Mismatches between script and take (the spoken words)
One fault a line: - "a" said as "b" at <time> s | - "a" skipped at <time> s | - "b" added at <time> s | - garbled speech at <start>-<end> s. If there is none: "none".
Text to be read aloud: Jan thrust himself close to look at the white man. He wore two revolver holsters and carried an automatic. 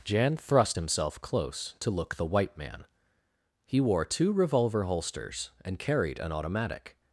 - "at" skipped at 2.1 s